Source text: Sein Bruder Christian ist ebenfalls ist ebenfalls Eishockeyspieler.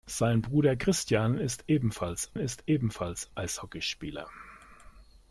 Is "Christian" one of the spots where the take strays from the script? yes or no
no